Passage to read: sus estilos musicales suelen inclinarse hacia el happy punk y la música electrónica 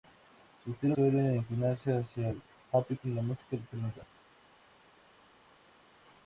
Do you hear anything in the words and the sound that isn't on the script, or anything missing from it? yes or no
yes